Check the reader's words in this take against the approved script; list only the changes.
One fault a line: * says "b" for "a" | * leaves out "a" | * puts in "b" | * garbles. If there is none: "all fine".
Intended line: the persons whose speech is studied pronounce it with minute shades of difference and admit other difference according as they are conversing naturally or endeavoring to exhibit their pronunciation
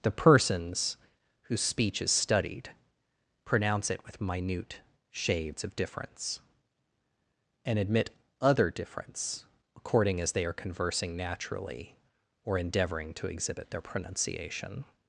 all fine